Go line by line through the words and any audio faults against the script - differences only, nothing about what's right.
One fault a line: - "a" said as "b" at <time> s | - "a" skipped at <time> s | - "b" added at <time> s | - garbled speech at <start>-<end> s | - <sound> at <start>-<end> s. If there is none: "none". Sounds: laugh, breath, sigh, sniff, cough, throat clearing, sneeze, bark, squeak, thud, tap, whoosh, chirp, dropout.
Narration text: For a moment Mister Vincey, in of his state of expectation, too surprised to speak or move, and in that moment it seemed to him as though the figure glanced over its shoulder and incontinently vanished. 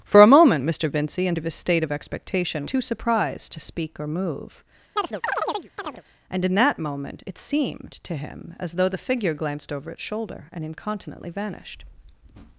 - chirp at 5.0-6.0 s